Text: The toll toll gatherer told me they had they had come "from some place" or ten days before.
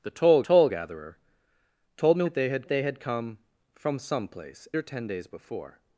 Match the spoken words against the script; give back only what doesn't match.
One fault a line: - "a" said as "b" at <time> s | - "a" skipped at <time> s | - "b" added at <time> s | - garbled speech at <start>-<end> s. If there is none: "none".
none